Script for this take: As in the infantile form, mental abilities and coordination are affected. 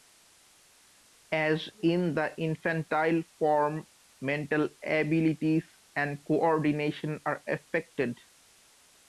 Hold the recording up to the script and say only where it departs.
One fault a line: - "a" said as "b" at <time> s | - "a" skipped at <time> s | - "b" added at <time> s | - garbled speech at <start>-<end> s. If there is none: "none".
none